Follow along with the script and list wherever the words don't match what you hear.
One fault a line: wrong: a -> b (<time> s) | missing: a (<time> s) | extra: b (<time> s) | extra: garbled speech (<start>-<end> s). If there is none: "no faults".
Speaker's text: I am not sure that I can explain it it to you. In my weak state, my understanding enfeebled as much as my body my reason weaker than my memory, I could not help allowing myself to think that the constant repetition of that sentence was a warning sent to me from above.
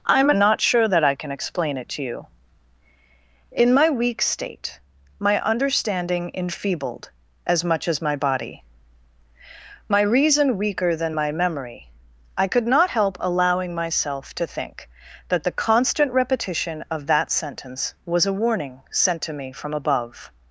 missing: it (1.9 s)